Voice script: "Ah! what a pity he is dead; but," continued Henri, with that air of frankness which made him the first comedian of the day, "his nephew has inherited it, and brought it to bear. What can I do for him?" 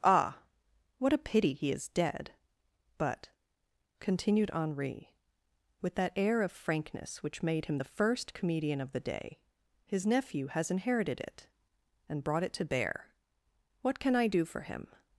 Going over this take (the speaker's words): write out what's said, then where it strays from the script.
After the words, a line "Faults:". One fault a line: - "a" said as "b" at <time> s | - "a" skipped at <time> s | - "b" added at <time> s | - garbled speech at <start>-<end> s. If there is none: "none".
"Ah! what a pity he is dead; but," continued Henri, with that air of frankness which made him the first comedian of the day, "his nephew has inherited it, and brought it to bear. What can I do for him?"
Faults:
none